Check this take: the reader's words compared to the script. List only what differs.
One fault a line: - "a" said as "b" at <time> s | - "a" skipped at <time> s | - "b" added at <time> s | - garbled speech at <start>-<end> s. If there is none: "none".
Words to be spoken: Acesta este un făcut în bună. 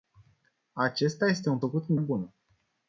none